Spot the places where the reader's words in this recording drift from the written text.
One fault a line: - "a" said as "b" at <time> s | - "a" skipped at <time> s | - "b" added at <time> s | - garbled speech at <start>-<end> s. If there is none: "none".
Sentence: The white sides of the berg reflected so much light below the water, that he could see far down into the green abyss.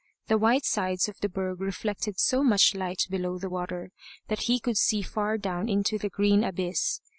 none